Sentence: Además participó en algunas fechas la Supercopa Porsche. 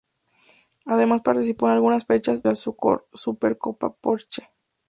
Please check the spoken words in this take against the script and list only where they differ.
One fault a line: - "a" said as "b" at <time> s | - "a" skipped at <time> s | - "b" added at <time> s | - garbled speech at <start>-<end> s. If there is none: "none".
none